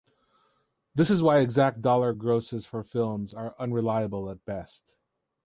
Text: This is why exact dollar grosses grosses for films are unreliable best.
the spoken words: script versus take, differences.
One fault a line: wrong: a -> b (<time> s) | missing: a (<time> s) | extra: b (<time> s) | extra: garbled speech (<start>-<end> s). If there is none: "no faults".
missing: grosses (2.7 s)
extra: at (4.3 s)